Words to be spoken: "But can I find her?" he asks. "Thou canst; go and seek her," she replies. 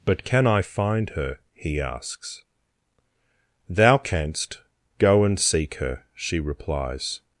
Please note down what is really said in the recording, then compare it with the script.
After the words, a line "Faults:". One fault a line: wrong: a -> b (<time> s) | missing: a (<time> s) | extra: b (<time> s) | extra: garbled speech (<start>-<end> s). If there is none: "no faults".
"But can I find her?" he asks. "Thou canst; go and seek her," she replies.
Faults:
no faults